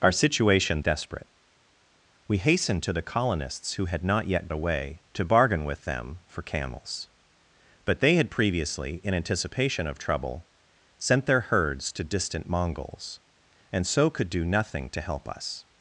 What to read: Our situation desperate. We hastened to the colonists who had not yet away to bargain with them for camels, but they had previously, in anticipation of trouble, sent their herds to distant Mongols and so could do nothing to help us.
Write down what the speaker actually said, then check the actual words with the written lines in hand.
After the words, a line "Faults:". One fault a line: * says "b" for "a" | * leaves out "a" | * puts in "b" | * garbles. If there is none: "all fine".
Our situation desperate. We hastened to the colonists who had not yet away to bargain with them for camels, but they had previously, in anticipation of trouble, sent their herds to distant Mongols and so could do nothing to help us.
Faults:
all fine